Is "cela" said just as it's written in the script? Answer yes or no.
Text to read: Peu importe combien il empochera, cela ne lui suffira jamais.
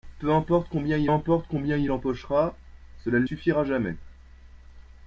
yes